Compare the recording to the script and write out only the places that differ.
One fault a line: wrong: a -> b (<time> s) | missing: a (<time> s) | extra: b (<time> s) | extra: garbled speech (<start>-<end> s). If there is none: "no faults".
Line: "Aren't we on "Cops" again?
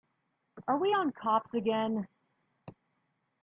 wrong: Aren't -> Are (0.7 s)